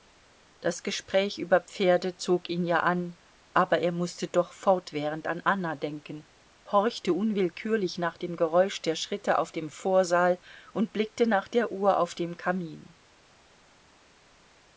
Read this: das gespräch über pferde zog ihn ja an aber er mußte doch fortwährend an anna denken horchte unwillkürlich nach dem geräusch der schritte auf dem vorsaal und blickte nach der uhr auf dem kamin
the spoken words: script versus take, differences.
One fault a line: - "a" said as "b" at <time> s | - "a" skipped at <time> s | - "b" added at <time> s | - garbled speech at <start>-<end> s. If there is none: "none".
none